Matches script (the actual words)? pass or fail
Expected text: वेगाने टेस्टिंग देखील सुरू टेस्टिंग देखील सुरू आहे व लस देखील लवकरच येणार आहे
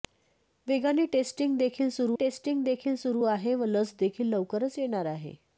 pass